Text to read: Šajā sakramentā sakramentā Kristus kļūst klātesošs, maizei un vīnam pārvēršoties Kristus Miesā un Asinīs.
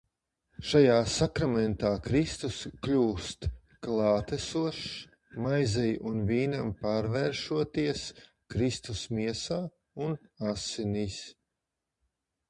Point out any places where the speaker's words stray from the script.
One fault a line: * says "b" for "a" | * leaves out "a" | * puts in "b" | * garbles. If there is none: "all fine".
* leaves out "sakramentā"